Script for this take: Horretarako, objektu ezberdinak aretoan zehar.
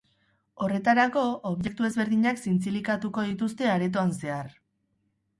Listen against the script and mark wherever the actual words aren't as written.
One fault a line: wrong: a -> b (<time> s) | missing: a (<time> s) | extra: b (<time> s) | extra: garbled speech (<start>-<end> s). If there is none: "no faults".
extra: zintzilikatuko dituzte (2.4 s)